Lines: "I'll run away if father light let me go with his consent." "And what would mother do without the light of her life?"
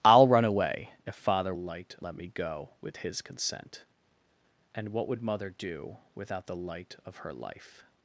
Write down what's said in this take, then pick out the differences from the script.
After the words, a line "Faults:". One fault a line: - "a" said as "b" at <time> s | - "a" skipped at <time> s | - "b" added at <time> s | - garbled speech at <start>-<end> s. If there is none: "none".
"I'll run away if father light let me go with his consent." "And what would mother do without the light of her life?"
Faults:
none